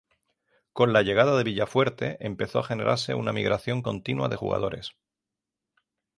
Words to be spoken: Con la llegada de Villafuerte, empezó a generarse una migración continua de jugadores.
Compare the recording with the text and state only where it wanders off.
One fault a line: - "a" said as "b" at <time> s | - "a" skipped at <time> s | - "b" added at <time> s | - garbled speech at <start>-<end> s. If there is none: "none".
none